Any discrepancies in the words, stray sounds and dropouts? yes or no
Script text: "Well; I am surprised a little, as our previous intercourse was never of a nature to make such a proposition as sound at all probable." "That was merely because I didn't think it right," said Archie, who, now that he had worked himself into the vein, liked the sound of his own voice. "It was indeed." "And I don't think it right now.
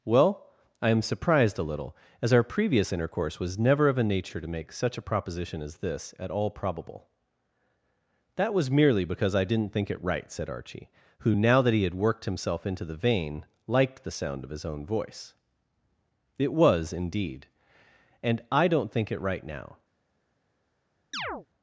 yes